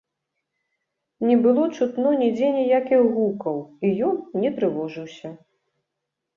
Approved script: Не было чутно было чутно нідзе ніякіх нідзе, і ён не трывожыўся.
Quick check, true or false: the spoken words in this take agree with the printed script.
false